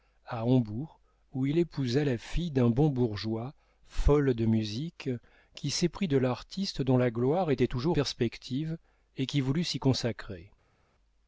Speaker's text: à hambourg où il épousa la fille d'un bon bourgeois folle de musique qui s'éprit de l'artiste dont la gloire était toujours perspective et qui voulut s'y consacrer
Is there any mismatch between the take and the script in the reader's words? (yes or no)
no